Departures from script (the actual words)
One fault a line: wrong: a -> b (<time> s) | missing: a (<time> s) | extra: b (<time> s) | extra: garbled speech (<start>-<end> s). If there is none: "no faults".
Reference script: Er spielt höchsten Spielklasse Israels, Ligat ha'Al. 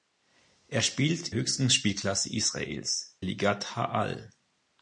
no faults